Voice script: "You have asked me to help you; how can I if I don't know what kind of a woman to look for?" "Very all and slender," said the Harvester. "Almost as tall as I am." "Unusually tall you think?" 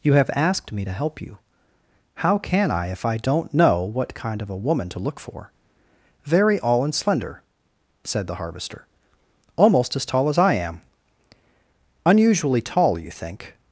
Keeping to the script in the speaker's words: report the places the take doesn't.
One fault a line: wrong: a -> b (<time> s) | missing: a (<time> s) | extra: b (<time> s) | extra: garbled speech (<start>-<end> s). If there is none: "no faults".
no faults